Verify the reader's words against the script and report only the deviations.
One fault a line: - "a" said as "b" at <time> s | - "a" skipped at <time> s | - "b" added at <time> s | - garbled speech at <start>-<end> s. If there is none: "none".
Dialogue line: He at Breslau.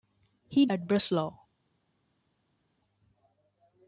none